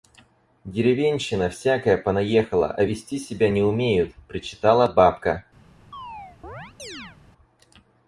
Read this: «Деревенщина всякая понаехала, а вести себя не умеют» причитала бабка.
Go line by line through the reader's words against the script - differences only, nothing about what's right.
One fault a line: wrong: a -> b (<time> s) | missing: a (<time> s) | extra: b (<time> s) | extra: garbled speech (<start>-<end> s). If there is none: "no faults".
no faults